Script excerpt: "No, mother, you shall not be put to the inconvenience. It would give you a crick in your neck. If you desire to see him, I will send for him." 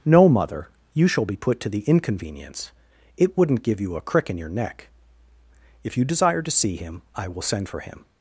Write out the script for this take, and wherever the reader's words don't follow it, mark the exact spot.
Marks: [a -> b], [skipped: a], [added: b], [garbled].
"No, mother, you shall [skipped: not] be put to the inconvenience. It [would -> wouldn't] give you a crick in your neck. If you desire to see him, I will send for him."